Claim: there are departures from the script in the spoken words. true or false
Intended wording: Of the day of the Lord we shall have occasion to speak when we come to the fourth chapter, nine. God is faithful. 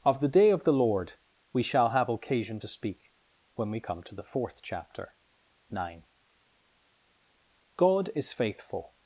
false